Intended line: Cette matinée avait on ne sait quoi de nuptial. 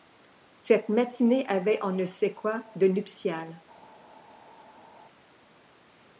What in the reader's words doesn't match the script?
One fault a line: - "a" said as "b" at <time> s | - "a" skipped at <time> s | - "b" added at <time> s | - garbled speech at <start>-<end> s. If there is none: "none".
none